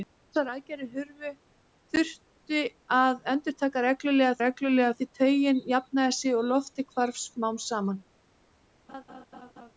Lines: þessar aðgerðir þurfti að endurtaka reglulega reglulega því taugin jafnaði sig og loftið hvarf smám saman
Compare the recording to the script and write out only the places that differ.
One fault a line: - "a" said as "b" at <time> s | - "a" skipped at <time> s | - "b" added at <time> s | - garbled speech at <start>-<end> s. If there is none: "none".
none